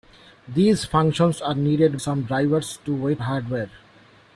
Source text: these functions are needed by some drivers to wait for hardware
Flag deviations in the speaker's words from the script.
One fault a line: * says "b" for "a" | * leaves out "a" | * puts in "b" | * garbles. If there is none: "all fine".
* leaves out "by"
* leaves out "for"